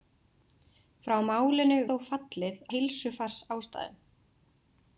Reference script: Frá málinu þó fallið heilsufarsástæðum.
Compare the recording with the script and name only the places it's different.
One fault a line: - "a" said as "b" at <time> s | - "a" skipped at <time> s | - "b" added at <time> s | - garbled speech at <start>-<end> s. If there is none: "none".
none